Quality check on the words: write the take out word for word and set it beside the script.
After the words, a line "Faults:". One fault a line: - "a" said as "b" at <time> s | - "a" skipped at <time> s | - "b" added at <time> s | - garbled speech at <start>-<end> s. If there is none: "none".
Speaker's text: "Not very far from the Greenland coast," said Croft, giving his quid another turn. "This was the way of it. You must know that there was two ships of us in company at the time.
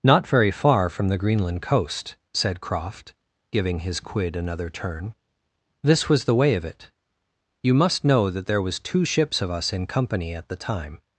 "Not very far from the Greenland coast," said Croft, giving his quid another turn. "This was the way of it. You must know that there was two ships of us in company at the time.
Faults:
none